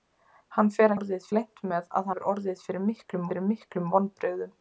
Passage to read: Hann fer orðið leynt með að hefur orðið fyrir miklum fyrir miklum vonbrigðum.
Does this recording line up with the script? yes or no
yes